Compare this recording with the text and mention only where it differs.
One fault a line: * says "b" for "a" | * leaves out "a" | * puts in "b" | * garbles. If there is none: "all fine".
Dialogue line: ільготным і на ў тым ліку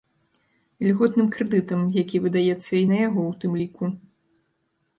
* puts in "крэдытам які выдаецца"
* puts in "яго"